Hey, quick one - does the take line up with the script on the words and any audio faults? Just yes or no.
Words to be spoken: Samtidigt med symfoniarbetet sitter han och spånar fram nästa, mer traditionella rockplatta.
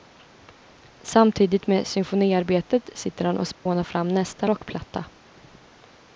no